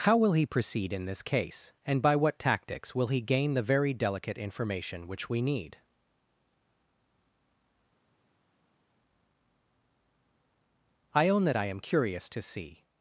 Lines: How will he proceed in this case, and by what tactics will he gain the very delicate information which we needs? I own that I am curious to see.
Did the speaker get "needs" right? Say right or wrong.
wrong